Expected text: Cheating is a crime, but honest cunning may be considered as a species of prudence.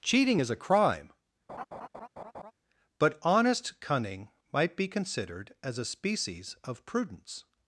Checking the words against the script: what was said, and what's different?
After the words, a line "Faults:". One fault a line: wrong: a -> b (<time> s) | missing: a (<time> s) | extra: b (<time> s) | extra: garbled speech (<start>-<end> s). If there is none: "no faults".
Cheating is a crime, but honest cunning might be considered as a species of prudence.
Faults:
wrong: may -> might (4.5 s)